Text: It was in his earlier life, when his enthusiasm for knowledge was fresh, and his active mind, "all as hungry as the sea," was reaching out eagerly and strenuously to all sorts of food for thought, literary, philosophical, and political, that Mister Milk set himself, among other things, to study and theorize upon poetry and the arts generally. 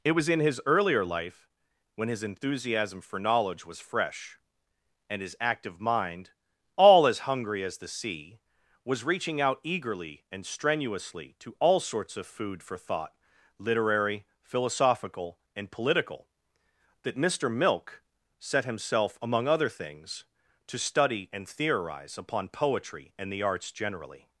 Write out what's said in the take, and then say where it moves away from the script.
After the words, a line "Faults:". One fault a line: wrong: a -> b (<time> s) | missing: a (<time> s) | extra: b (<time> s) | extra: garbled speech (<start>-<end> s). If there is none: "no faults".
It was in his earlier life, when his enthusiasm for knowledge was fresh, and his active mind, "all as hungry as the sea," was reaching out eagerly and strenuously to all sorts of food for thought, literary, philosophical, and political, that Mister Milk set himself, among other things, to study and theorize upon poetry and the arts generally.
Faults:
no faults